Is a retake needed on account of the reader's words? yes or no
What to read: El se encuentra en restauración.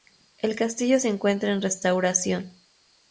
yes